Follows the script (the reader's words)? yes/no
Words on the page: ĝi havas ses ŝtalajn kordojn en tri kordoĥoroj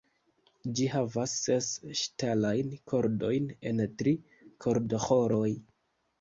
yes